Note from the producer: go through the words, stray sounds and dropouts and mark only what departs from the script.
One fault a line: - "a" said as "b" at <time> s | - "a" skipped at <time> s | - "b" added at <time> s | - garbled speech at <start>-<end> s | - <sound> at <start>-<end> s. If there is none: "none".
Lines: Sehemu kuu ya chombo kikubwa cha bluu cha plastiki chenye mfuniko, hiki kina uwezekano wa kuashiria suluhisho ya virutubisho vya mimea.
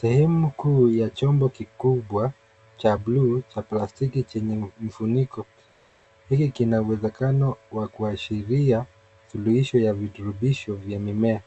none